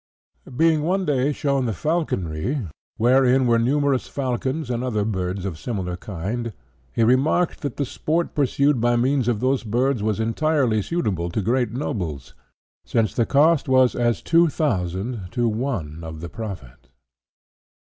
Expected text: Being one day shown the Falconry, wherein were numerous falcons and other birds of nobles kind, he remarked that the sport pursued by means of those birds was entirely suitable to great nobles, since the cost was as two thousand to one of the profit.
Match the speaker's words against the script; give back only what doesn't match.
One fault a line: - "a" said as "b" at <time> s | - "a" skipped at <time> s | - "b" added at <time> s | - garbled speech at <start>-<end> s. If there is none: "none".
- "nobles" said as "similar" at 5.6 s